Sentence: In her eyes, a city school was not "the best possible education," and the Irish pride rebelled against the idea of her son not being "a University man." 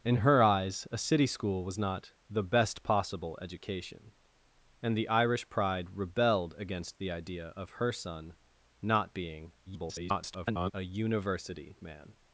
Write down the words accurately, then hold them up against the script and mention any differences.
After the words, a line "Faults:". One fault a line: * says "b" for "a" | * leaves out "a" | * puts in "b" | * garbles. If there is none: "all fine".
In her eyes, a city school was not "the best possible education," and the Irish pride rebelled against the idea of her son not being [garbled] "a University man."
Faults:
* garbles